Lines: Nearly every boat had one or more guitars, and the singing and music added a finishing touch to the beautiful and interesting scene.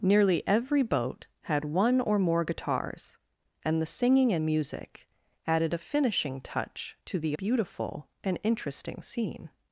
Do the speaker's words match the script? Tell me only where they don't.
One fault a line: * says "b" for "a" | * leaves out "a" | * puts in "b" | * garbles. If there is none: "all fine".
all fine